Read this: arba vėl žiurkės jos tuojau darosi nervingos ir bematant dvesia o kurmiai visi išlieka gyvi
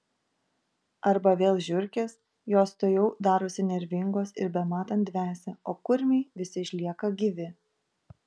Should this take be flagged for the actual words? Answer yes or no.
no